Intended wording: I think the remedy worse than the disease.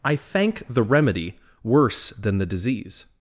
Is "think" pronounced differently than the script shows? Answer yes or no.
yes